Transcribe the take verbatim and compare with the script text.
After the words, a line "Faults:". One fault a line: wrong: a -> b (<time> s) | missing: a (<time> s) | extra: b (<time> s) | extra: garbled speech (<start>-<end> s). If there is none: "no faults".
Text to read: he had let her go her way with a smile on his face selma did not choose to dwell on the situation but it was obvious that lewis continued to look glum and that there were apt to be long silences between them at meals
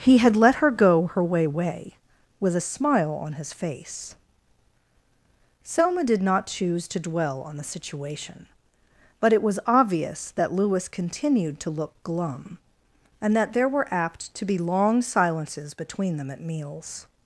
he had let her go her way way with a smile on his face selma did not choose to dwell on the situation but it was obvious that lewis continued to look glum and that there were apt to be long silences between them at meals
Faults:
extra: way (1.4 s)